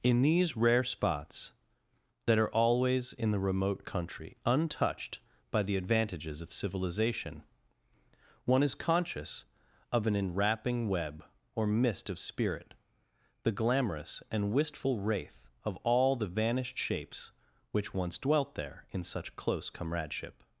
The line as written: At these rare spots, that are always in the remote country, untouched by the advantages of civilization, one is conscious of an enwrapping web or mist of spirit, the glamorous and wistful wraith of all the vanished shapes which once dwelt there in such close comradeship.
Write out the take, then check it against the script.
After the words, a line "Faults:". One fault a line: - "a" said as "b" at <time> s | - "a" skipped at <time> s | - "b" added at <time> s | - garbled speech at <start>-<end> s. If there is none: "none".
In these rare spots, that are always in the remote country, untouched by the advantages of civilization, one is conscious of an enwrapping web or mist of spirit, the glamorous and wistful wraith of all the vanished shapes which once dwelt there in such close comradeship.
Faults:
- "At" said as "In" at 0.0 s